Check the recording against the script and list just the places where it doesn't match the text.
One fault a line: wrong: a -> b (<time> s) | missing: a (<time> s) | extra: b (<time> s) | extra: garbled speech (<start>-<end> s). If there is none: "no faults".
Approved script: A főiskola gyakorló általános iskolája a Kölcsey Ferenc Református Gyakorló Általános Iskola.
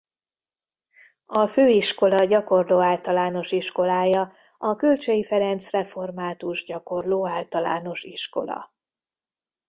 no faults